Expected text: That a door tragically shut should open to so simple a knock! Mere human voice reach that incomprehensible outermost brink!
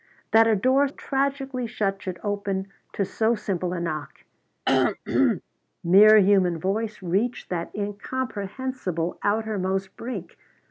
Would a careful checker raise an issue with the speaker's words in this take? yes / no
no